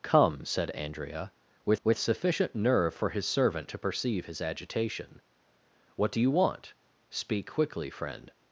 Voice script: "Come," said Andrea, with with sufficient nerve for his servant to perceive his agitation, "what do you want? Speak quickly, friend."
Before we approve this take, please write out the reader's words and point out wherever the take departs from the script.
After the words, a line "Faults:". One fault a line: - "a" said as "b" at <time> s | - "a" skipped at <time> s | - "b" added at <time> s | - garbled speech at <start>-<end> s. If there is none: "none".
"Come," said Andrea, with with sufficient nerve for his servant to perceive his agitation, "what do you want? Speak quickly, friend."
Faults:
none